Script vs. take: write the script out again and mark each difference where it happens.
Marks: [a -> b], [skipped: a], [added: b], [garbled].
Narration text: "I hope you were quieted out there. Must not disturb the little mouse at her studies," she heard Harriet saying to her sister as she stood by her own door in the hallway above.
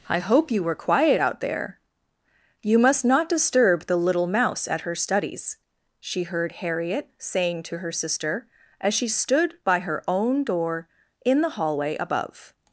"I hope you were [quieted -> quiet] out there. [added: You] Must not disturb the little mouse at her studies," she heard Harriet saying to her sister as she stood by her own door in the hallway above.